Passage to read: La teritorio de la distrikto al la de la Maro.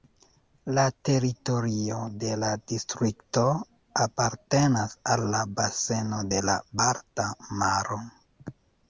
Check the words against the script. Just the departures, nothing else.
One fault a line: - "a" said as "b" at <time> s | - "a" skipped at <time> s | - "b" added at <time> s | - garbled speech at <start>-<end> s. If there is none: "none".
- "apartenas" added at 4.0 s
- "baseno" added at 5.6 s
- "Balta" added at 6.8 s